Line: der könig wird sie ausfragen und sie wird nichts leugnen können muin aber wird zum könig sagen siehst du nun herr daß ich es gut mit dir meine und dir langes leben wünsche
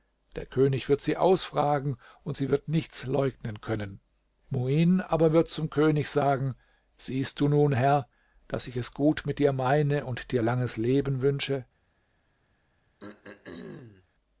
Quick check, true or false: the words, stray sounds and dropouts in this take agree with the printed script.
false